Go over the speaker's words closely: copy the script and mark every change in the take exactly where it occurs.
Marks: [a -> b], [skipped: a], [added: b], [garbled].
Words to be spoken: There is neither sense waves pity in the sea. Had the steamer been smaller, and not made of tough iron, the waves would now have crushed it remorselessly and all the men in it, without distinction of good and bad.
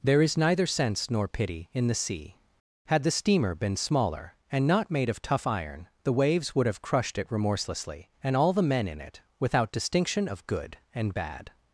There is neither sense [waves -> nor] pity in the sea. Had the steamer been smaller, and not made of tough iron, the waves would [skipped: now] have crushed it remorselessly and all the men in it, without distinction of good and bad.